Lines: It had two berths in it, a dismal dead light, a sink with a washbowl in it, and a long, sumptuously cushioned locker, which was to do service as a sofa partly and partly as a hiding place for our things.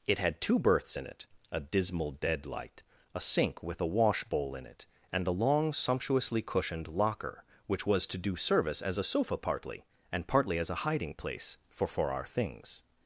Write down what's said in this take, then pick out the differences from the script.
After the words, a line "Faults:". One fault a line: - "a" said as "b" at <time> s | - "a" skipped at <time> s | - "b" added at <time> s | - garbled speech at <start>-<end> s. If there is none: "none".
It had two berths in it, a dismal dead light, a sink with a washbowl in it, and a long, sumptuously cushioned locker, which was to do service as a sofa partly and partly as a hiding place for for our things.
Faults:
- "for" added at 11.9 s